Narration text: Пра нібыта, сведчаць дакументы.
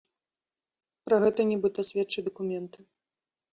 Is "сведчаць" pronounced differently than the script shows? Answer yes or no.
no